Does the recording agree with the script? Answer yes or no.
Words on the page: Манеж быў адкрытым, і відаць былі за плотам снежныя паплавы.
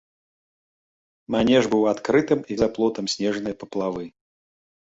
no